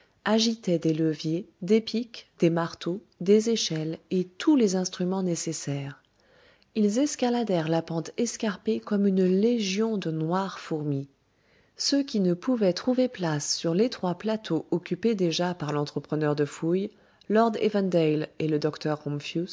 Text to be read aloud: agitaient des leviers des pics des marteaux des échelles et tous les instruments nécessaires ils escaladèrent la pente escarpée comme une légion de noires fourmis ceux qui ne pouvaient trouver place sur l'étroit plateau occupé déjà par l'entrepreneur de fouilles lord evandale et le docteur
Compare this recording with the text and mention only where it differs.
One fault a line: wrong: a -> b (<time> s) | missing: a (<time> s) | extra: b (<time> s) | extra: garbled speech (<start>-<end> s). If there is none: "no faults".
no faults